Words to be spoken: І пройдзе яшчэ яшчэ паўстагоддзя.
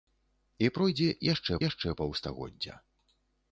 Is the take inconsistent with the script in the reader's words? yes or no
no